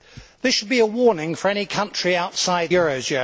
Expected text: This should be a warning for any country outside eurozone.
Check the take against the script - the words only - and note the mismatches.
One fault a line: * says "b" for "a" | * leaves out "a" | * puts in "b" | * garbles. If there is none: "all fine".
all fine